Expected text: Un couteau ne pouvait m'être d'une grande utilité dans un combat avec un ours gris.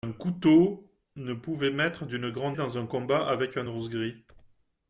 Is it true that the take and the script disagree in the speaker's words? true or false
true